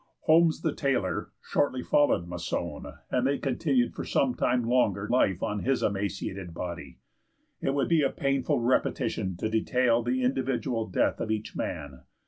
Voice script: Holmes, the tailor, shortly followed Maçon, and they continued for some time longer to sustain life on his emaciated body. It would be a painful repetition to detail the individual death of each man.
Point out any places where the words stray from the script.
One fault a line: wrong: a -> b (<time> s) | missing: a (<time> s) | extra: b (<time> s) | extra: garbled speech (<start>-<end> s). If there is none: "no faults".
missing: to sustain (5.1 s)